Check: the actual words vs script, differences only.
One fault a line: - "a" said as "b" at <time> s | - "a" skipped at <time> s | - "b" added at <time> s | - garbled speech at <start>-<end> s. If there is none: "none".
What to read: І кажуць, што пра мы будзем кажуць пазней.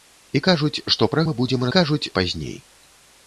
none